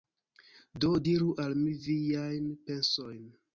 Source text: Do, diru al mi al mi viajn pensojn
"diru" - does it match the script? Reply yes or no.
yes